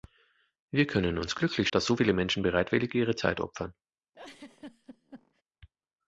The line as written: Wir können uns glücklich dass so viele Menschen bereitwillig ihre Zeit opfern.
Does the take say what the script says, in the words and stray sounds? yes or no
no